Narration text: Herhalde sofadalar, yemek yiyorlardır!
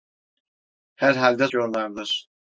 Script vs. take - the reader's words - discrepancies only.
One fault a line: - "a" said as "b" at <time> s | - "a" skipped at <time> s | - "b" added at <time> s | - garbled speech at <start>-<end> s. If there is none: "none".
- "sofadalar yemek" skipped at 1.5 s